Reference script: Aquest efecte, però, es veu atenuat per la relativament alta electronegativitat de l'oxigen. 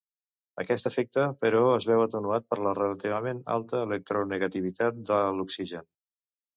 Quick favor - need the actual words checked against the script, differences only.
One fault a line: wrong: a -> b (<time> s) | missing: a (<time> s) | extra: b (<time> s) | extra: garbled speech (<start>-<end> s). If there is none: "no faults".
no faults